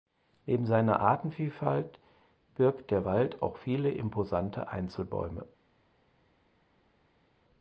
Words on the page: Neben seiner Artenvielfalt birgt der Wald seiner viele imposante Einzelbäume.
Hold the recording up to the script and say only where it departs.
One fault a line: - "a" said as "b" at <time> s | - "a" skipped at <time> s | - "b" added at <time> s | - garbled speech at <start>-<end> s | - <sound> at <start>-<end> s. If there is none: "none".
- "seiner" said as "auch" at 3.4 s